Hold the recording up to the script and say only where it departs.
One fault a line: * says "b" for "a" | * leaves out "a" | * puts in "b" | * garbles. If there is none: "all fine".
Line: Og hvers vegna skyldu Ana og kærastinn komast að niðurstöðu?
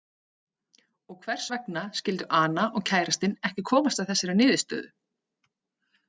* puts in "ekki"
* puts in "þessari"